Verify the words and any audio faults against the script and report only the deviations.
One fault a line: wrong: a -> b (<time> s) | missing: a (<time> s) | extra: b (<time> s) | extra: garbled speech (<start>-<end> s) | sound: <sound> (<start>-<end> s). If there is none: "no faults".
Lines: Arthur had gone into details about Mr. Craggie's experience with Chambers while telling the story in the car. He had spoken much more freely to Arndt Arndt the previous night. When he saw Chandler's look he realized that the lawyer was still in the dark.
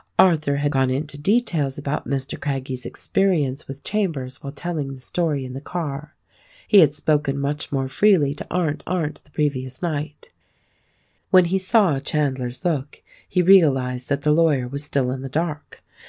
no faults